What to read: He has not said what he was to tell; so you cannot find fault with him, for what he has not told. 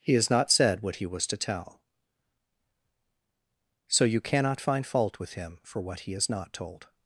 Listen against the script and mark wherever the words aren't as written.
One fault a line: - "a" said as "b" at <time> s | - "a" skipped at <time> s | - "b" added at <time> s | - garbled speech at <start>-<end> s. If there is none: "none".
none